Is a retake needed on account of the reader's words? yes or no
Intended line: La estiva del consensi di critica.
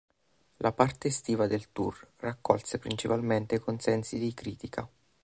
yes